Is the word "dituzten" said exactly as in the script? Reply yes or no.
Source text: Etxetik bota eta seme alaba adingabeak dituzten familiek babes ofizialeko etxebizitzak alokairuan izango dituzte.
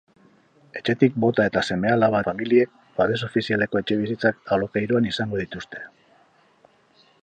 no